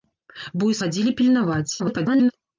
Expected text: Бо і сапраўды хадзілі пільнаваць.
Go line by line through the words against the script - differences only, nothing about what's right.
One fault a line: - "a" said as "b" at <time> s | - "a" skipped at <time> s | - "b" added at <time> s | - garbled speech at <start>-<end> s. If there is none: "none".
- "сапраўды" skipped at 0.8 s
- garbled speech at 1.8-2.3 s